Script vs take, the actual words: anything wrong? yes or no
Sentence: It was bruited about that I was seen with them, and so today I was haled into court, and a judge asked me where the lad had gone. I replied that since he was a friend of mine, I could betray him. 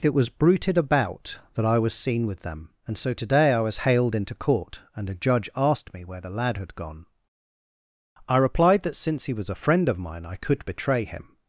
no